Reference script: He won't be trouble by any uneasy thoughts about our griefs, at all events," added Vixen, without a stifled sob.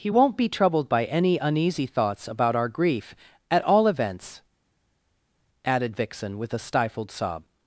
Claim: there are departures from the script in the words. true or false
true